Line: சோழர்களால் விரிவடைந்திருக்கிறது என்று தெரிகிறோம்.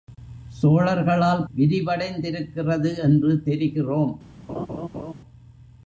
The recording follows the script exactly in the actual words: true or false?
true